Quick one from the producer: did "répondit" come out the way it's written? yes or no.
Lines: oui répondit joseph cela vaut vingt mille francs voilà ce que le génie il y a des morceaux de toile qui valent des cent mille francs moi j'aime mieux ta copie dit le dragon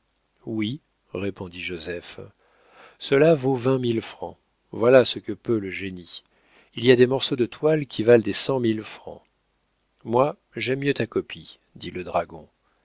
yes